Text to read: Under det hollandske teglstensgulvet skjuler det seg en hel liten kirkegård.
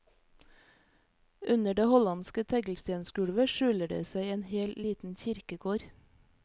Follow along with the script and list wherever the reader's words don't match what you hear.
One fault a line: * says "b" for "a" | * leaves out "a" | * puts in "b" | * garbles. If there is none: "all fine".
all fine